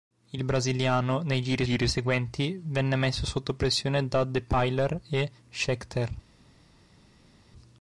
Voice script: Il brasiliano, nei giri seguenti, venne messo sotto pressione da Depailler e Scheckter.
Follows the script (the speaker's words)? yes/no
no